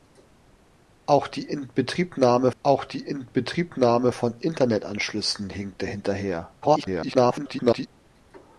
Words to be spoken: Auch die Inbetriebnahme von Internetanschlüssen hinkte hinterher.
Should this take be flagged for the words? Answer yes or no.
yes